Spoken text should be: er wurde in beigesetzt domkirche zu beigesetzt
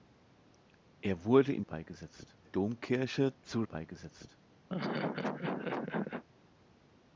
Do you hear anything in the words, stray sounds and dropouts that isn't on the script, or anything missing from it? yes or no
yes